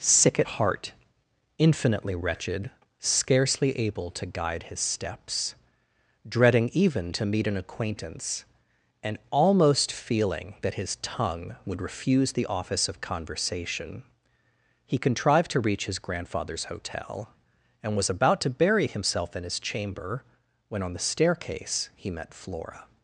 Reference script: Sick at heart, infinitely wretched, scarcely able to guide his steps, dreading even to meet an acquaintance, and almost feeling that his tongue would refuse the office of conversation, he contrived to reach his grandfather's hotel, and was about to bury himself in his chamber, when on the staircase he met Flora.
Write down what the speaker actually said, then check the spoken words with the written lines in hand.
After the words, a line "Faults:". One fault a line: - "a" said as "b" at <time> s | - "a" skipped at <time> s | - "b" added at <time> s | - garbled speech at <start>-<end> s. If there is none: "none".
Sick at heart, infinitely wretched, scarcely able to guide his steps, dreading even to meet an acquaintance, and almost feeling that his tongue would refuse the office of conversation, he contrived to reach his grandfather's hotel, and was about to bury himself in his chamber, when on the staircase he met Flora.
Faults:
none